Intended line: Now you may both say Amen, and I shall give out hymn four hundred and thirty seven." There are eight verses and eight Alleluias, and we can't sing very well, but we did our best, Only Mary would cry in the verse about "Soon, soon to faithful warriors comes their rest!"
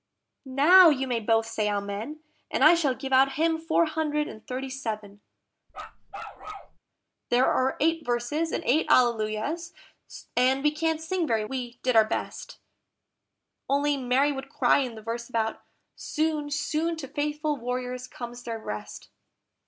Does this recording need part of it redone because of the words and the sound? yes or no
yes